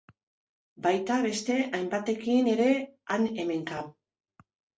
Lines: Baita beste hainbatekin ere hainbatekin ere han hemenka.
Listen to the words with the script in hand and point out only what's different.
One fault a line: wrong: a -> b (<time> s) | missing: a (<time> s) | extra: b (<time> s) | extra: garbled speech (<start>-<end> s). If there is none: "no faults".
missing: hainbatekin ere (2.7 s)